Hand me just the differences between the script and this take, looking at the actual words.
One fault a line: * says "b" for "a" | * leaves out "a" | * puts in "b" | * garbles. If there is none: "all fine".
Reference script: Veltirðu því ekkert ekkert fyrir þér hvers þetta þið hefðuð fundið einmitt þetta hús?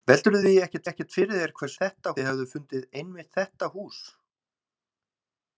all fine